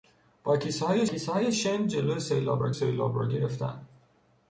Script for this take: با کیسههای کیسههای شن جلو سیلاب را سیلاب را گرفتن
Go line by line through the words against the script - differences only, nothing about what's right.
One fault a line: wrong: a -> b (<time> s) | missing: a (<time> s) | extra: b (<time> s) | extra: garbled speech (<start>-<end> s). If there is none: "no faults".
no faults